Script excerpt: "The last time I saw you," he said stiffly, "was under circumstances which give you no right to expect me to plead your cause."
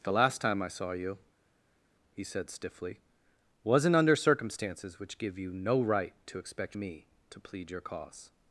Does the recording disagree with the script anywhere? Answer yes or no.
yes